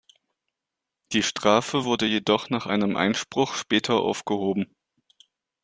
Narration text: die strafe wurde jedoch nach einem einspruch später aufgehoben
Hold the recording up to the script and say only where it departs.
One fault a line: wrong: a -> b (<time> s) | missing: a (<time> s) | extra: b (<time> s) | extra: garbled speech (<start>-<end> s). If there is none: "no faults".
no faults